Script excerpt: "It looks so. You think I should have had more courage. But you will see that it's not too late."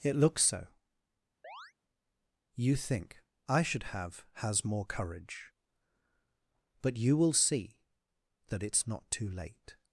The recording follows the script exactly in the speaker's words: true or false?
false